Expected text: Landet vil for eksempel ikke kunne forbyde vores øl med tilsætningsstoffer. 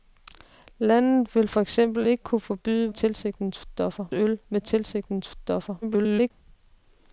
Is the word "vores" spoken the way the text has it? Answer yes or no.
no